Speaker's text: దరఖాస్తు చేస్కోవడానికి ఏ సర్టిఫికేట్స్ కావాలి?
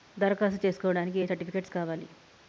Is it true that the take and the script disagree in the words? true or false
false